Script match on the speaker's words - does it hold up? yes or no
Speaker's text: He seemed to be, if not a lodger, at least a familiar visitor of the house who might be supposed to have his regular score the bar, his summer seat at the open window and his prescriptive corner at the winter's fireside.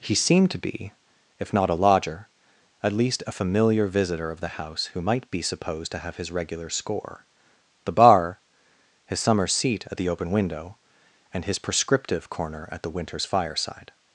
yes